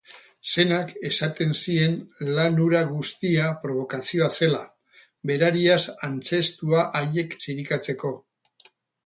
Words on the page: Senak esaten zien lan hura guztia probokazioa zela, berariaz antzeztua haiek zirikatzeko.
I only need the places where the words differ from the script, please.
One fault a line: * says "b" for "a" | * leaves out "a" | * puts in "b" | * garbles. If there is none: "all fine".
all fine